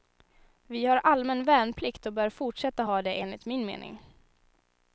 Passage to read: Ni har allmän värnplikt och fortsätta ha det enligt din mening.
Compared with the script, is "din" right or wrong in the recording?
wrong